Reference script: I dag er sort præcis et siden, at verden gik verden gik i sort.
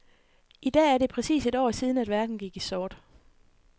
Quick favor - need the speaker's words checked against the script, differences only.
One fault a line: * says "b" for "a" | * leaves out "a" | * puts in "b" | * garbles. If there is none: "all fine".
* says "det" for "sort"
* puts in "år"
* leaves out "verden gik"